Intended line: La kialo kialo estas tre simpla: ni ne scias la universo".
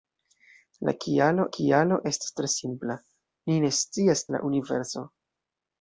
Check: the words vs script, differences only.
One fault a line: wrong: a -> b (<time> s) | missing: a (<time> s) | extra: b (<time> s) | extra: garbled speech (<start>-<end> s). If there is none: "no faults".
no faults